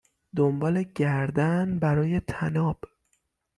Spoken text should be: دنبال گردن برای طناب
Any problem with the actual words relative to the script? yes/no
no